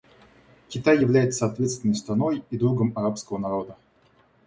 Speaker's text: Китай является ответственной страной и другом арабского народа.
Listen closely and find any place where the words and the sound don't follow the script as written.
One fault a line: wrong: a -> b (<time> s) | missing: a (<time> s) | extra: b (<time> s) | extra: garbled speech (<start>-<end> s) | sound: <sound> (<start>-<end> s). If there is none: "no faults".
no faults